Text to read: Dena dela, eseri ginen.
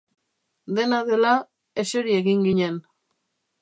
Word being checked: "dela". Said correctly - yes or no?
yes